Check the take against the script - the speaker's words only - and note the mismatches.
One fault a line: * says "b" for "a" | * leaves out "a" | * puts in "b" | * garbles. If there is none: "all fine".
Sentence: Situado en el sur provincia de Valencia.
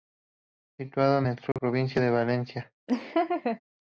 all fine